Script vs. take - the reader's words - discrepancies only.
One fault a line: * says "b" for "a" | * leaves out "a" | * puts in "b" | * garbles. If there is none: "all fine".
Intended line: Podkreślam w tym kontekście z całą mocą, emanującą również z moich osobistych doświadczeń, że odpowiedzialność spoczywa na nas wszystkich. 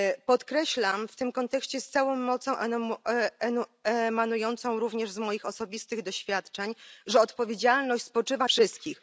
* leaves out "na nas"